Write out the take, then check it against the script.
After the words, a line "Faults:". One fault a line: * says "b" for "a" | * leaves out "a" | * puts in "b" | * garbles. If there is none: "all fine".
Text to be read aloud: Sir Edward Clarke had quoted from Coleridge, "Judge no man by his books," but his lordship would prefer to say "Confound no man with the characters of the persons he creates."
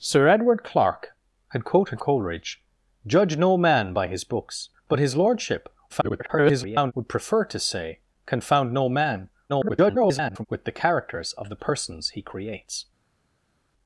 Sir Edward Clarke had quoted Coleridge, "Judge no man by his books," but his lordship [garbled] would prefer to say "Confound no man [garbled] with the characters of the persons he creates."
Faults:
* leaves out "from"
* garbles
* garbles